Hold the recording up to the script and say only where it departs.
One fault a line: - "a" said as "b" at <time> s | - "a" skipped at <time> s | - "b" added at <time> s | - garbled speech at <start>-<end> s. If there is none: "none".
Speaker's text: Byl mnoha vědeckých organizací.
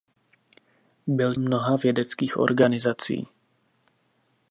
none